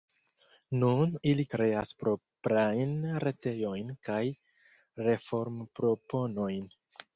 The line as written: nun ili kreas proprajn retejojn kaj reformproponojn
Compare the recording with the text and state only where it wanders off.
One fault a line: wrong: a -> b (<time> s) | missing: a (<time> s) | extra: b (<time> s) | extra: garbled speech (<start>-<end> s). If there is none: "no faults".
no faults